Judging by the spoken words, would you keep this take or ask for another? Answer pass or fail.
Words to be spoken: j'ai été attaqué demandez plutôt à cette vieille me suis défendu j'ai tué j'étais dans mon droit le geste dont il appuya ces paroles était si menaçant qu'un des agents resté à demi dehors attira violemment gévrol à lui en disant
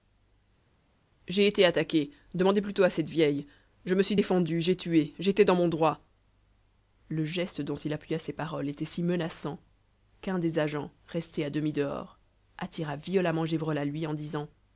fail